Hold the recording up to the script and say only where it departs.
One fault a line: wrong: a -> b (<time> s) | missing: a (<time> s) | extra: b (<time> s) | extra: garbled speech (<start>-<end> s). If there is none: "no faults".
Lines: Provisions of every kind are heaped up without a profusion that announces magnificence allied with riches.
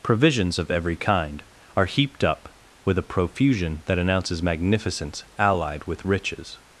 wrong: without -> with (2.8 s)